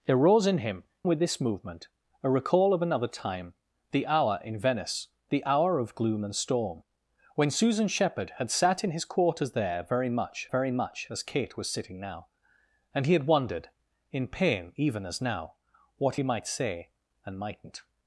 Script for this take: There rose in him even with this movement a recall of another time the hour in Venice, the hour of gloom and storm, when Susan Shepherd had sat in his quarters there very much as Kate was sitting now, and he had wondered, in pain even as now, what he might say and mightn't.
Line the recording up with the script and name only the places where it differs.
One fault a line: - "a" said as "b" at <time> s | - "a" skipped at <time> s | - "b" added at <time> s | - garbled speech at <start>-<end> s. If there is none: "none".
- "even" skipped at 0.8 s
- "very much" added at 10.5 s